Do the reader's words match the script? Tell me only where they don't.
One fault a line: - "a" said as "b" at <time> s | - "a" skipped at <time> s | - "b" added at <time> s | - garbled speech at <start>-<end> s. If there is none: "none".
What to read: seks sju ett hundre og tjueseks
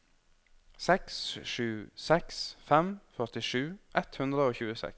- "seks fem førtisju" added at 2.1 s